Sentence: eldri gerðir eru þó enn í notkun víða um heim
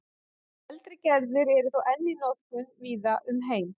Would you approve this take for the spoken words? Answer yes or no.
yes